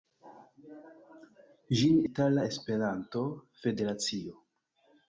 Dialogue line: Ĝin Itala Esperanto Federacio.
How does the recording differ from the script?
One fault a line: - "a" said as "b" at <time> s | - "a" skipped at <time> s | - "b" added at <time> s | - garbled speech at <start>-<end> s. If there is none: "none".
none